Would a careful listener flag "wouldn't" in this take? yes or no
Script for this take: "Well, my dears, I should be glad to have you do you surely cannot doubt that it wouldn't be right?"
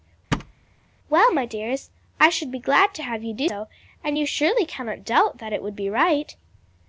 yes